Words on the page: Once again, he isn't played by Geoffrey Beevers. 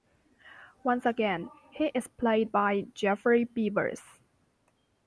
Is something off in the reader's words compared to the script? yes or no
yes